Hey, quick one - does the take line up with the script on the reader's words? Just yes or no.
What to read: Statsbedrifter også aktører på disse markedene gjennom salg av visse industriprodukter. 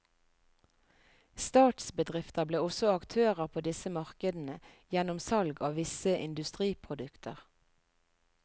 no